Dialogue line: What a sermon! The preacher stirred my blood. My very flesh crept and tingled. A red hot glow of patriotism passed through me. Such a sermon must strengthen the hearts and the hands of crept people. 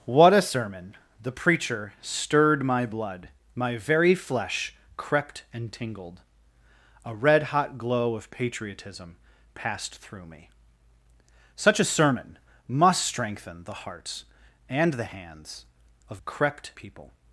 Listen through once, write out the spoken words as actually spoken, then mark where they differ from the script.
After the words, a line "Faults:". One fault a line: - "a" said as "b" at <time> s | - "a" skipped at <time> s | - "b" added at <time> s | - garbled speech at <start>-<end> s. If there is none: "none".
What a sermon! The preacher stirred my blood. My very flesh crept and tingled. A red hot glow of patriotism passed through me. Such a sermon must strengthen the hearts and the hands of crept people.
Faults:
none